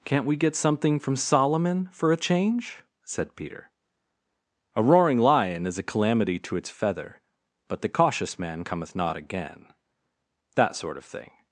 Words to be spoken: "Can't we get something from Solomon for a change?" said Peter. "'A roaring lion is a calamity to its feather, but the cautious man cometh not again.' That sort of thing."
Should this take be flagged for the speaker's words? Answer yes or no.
no